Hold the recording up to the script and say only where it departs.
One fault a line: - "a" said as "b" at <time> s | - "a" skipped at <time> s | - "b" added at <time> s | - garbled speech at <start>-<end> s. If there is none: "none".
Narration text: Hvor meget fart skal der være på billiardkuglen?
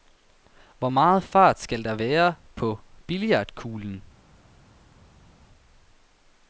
none